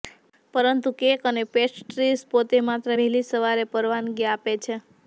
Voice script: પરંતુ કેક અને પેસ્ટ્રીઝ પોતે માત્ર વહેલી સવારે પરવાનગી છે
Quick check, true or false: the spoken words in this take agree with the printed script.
false